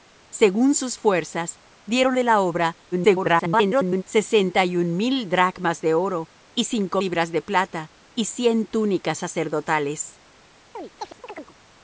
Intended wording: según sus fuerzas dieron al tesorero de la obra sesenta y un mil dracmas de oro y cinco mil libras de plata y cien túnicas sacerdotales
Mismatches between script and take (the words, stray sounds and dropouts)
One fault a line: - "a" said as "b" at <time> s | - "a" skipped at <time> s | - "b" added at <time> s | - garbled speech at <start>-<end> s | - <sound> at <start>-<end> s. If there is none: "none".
- "al tesorero" skipped at 2.2 s
- garbled speech at 2.9-4.0 s
- "mil" skipped at 7.0 s
- chirp at 10.7-11.6 s